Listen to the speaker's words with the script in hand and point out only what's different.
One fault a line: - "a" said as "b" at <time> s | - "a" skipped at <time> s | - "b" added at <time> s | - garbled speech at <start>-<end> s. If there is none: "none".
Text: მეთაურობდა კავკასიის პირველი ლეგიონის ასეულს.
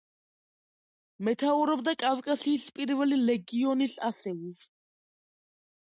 none